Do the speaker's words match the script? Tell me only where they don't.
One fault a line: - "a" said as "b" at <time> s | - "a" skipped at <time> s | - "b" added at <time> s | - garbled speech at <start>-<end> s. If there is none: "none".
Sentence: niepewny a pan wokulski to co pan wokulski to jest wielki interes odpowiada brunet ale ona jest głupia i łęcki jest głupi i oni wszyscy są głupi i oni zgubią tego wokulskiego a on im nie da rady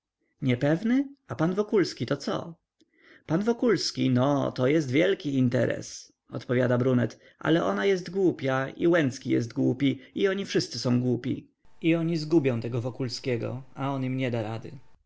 - "no" added at 4.1 s